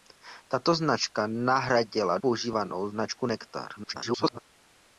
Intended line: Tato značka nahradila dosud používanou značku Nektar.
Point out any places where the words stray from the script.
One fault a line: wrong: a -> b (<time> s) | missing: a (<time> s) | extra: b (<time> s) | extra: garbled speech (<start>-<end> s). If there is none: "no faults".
missing: dosud (2.2 s)
extra: garbled speech (3.8-4.4 s)